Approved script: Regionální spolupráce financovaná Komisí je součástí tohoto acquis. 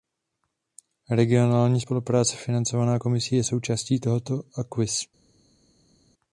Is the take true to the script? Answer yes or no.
yes